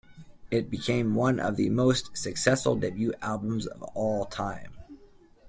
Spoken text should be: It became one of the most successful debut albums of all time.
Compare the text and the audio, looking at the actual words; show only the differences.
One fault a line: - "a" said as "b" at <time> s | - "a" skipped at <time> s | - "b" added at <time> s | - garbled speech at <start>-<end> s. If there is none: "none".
none